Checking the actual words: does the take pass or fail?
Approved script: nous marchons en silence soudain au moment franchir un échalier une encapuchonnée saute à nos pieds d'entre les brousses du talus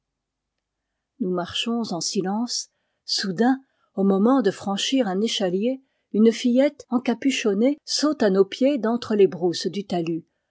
fail